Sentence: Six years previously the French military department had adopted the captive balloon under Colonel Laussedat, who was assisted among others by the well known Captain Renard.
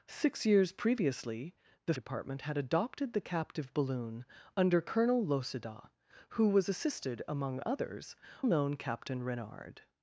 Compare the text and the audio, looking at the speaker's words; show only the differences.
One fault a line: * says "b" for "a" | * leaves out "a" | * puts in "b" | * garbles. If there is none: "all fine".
* leaves out "French military"
* leaves out "by the well"